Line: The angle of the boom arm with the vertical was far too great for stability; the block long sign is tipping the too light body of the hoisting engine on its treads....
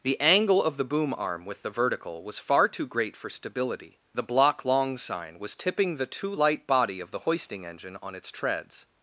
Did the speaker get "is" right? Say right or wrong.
wrong